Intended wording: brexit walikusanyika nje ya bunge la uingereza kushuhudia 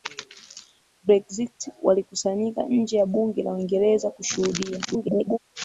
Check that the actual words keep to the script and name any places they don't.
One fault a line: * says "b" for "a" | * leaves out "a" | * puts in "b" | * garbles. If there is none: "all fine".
* garbles